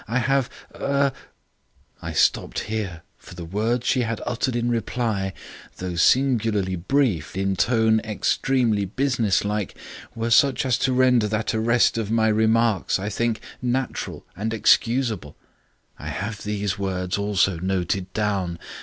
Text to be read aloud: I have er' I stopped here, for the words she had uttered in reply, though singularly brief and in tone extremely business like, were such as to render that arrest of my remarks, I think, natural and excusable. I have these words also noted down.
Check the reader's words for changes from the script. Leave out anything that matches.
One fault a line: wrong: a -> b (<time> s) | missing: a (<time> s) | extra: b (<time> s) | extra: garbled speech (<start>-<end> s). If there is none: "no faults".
missing: and (7.4 s)